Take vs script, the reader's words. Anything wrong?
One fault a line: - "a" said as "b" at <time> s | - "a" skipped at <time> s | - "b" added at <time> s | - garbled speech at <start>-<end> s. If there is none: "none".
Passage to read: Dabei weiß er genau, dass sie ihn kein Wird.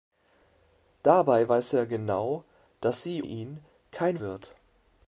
none